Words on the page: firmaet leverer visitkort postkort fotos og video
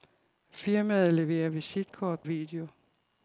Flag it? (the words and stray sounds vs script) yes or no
yes